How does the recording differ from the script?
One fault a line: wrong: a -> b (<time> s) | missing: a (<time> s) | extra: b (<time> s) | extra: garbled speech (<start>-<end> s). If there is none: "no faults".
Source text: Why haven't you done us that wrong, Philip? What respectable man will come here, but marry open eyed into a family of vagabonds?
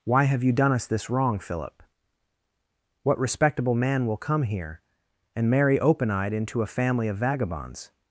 wrong: haven't -> have (0.2 s)
wrong: that -> this (0.9 s)
wrong: but -> and (5.3 s)